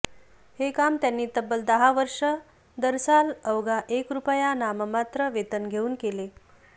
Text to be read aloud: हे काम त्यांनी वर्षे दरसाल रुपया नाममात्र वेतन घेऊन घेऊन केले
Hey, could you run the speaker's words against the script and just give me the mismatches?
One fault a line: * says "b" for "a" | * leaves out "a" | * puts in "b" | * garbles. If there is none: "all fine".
* puts in "तब्बल दहा"
* puts in "अवघा एक"
* leaves out "घेऊन"